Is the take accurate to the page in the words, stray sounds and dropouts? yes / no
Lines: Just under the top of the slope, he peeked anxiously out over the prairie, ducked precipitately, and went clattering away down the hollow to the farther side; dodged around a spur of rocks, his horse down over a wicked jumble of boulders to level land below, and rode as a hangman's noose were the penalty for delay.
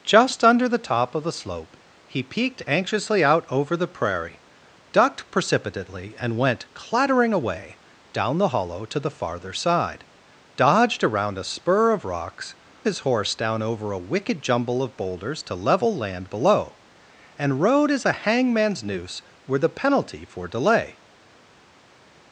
yes